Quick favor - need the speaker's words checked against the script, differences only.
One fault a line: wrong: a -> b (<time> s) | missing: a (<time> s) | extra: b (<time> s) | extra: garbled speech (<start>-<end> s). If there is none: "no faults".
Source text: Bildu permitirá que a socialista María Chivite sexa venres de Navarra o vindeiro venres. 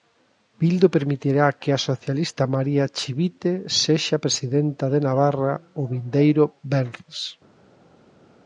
wrong: venres -> presidenta (4.2 s)